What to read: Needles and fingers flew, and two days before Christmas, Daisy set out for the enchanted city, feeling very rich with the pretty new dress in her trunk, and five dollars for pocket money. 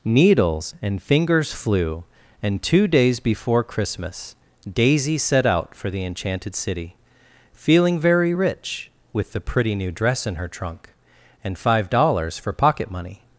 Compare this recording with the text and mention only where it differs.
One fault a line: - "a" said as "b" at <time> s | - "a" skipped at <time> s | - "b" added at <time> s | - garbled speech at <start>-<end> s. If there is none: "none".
none